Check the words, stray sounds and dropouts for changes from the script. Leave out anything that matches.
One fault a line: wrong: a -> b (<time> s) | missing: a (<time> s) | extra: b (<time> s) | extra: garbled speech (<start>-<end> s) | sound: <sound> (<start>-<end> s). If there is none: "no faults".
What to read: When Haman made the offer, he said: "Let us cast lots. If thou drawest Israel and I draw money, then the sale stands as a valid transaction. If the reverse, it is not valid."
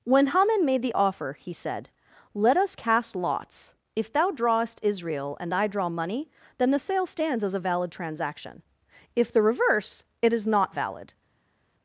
no faults